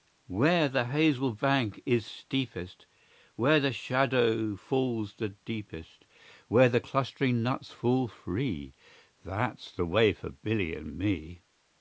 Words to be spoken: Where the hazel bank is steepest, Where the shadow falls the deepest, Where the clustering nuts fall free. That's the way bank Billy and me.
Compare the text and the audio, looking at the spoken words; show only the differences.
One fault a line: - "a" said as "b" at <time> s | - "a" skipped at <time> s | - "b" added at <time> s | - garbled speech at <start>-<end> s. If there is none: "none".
- "bank" said as "for" at 10.1 s